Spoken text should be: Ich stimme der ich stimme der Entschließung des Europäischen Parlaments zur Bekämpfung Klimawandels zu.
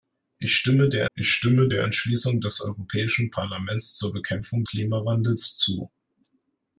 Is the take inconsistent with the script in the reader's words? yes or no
no